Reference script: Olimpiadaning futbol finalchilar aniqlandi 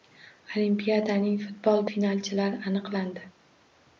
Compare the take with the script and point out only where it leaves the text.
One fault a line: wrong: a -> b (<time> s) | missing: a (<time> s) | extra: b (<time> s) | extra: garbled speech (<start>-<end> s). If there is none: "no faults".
no faults